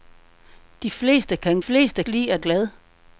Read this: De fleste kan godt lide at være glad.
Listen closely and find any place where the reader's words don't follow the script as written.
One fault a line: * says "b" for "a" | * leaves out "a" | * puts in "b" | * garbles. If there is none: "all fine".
* says "fleste" for "godt"
* leaves out "være"